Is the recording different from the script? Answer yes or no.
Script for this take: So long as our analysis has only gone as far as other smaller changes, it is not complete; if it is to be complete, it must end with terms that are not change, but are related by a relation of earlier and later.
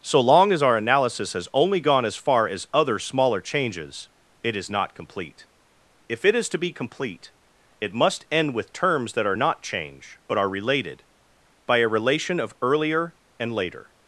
no